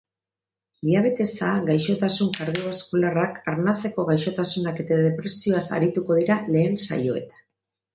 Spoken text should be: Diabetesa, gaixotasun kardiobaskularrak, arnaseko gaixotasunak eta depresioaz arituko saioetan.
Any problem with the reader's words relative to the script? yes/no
yes